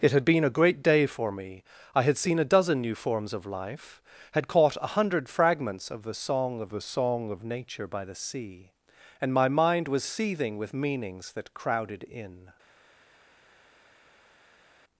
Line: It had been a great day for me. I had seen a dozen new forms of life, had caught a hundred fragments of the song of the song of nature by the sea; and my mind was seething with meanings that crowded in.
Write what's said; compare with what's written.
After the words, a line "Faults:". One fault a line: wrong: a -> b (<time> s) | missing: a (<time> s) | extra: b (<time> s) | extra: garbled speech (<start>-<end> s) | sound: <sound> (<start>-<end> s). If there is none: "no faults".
It had been a great day for me. I had seen a dozen new forms of life, had caught a hundred fragments of the song of the song of nature by the sea; and my mind was seething with meanings that crowded in.
Faults:
no faults